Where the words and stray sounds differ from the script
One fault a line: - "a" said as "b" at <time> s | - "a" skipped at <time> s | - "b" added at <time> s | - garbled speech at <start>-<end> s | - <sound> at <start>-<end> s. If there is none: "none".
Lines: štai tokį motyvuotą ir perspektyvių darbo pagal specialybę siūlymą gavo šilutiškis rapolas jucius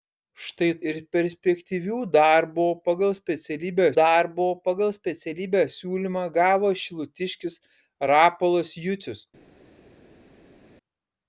- "tokį motyvuotą ir perspektyvių" said as "ir perspektyvių darbo pagal specialybę" at 0.9 s